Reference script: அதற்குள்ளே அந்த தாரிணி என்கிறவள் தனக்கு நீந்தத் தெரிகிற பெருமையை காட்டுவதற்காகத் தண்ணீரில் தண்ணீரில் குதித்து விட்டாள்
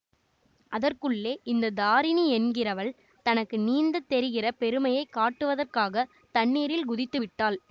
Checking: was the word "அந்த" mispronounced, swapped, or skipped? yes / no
yes